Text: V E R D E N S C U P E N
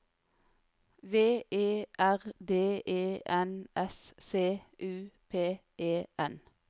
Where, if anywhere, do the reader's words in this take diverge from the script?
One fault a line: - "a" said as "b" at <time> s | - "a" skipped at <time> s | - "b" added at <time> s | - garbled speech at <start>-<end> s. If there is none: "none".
none